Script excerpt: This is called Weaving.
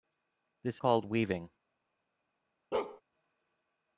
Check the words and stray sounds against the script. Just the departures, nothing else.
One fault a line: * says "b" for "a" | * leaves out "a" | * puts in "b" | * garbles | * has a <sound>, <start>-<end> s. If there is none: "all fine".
* leaves out "is"
* has a bark, 2.7-3.0 s